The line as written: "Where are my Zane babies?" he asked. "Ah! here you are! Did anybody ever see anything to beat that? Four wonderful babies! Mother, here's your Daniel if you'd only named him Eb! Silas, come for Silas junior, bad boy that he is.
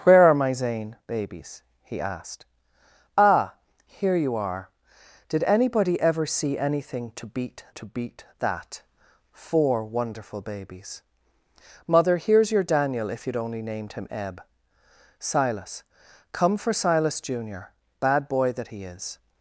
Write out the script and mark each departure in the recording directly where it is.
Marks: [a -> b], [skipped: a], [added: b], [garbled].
"Where are my Zane babies?" he asked. "Ah! here you are! Did anybody ever see anything to beat [added: to beat] that? Four wonderful babies! Mother, here's your Daniel if you'd only named him Eb! Silas, come for Silas junior, bad boy that he is.